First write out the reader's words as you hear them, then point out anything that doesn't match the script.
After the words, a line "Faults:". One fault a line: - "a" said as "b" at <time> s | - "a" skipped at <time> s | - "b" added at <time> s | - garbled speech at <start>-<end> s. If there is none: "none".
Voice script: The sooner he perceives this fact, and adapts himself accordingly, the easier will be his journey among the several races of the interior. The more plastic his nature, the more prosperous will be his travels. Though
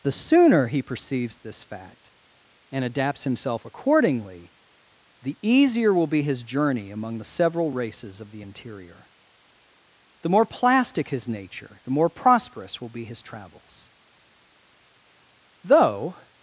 The sooner he perceives this fact, and adapts himself accordingly, the easier will be his journey among the several races of the interior. The more plastic his nature, the more prosperous will be his travels. Though
Faults:
none